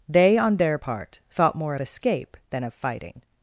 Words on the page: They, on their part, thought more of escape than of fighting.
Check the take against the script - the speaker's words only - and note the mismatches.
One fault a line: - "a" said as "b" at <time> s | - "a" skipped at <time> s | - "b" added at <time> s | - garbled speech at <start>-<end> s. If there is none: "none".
- "of" skipped at 1.7 s